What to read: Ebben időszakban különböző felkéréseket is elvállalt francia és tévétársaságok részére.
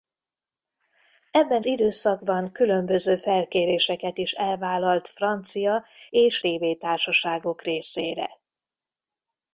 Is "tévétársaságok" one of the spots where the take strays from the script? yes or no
no